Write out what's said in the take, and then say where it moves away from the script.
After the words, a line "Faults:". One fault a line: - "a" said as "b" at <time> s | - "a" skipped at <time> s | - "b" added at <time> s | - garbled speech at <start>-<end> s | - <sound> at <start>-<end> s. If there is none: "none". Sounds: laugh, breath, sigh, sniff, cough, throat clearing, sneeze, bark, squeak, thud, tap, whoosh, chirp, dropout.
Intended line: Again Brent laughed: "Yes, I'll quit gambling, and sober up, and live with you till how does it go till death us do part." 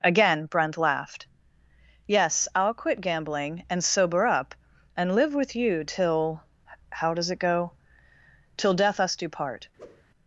Again Brent laughed: "Yes, I'll quit gambling, and sober up, and live with you till how does it go till death us do part."
Faults:
- whoosh at 9.8-10.0 s